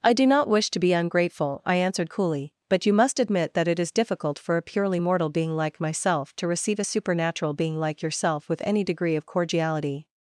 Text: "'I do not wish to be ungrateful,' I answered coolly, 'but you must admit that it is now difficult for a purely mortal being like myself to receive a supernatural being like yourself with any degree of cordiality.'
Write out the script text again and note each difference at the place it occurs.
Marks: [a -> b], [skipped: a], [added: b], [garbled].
"'I do not wish to be ungrateful,' I answered coolly, 'but you must admit that it is [skipped: now] difficult for a purely mortal being like myself to receive a supernatural being like yourself with any degree of cordiality.'